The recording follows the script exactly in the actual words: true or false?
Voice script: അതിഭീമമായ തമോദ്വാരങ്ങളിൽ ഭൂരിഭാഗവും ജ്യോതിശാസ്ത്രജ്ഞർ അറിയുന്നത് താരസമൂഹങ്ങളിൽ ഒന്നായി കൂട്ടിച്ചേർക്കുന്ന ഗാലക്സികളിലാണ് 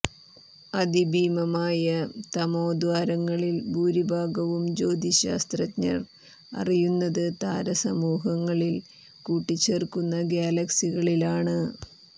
false